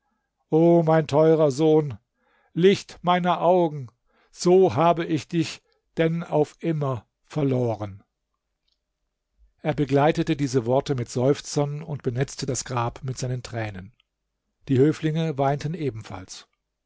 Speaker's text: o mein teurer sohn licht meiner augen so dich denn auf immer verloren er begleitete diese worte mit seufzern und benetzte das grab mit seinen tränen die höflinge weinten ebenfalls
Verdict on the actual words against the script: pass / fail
fail